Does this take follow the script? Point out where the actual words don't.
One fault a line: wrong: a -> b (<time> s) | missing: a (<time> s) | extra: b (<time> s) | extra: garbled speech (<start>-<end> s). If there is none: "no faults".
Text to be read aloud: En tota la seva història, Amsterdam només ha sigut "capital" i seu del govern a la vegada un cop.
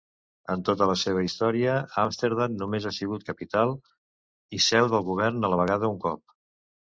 no faults